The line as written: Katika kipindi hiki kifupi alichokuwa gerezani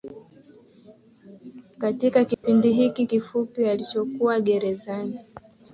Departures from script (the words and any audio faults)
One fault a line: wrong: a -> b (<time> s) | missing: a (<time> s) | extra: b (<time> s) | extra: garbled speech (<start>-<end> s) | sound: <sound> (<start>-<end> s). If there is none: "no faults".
sound: dropout (2.3-2.4 s)